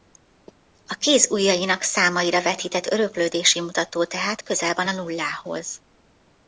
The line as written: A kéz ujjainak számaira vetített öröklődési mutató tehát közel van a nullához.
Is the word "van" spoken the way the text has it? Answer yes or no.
yes